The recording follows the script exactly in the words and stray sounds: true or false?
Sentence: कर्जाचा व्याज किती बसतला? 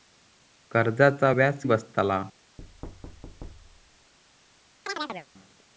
false